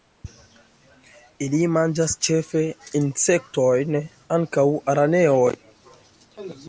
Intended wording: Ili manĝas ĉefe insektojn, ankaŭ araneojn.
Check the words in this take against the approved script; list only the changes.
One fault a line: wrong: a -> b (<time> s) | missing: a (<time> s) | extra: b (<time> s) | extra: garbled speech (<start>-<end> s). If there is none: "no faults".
no faults